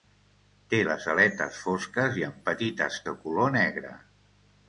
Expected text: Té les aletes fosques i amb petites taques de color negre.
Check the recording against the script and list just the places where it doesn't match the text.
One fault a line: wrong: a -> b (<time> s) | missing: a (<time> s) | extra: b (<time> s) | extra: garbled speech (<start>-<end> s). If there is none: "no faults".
missing: taques (3.0 s)